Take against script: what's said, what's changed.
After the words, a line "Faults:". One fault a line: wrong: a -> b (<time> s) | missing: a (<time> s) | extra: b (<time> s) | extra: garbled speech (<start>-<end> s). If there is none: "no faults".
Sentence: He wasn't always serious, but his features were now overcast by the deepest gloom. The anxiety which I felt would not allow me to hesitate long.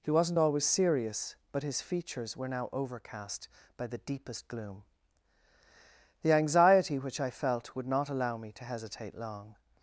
He wasn't always serious, but his features were now overcast by the deepest gloom. The anxiety which I felt would not allow me to hesitate long.
Faults:
no faults